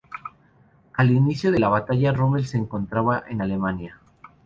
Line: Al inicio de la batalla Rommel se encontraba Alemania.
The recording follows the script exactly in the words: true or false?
false